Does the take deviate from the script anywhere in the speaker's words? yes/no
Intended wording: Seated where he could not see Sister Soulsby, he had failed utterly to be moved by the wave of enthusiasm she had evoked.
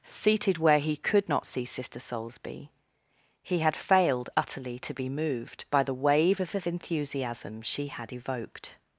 yes